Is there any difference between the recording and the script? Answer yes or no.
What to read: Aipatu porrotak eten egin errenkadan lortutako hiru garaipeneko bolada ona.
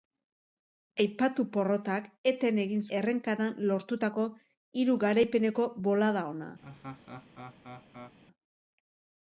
no